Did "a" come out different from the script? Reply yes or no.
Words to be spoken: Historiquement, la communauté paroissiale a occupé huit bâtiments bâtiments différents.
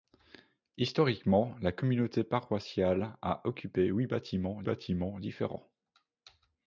no